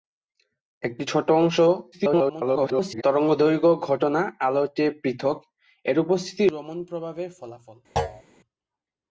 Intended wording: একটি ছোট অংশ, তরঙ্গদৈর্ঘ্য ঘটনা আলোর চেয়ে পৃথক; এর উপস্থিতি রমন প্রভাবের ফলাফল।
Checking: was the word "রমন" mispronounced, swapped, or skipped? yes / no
no